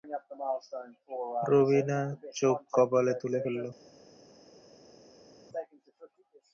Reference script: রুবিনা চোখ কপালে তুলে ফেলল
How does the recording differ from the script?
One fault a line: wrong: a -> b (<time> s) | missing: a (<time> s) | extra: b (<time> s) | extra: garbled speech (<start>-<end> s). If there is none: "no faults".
no faults